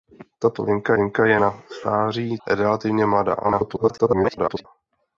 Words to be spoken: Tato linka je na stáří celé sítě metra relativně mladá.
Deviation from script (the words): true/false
true